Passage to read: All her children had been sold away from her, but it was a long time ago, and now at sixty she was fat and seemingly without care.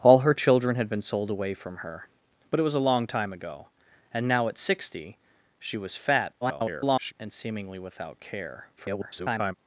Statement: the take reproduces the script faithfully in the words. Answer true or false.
false